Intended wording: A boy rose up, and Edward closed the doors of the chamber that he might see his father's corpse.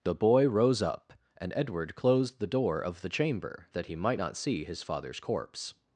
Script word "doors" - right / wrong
wrong